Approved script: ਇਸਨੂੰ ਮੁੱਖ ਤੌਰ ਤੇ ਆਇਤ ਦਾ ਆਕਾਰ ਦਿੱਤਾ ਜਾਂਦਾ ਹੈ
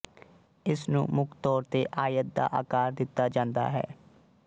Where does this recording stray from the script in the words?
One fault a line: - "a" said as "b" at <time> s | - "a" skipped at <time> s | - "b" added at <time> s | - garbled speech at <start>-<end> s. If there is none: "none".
none